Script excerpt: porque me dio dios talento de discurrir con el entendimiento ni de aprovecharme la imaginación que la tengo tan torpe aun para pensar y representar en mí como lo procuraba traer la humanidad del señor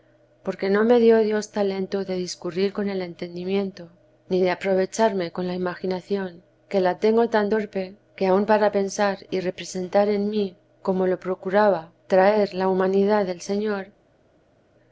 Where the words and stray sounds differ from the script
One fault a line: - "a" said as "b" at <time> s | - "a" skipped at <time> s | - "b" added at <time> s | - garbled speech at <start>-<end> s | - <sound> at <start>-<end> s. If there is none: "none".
- "no" added at 0.7 s
- "con" added at 5.3 s
- "que" added at 8.1 s